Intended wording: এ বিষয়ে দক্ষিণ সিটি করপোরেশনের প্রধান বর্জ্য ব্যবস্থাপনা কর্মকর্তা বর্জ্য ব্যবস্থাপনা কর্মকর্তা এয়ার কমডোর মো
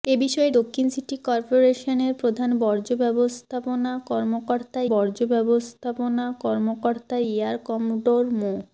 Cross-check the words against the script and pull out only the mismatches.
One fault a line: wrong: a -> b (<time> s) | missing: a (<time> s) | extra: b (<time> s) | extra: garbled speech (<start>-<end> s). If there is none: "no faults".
no faults